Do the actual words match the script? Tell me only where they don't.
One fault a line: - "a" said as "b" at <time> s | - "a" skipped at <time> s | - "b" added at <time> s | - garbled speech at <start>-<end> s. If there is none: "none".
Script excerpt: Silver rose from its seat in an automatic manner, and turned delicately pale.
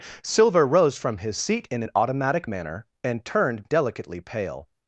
- "its" said as "his" at 1.2 s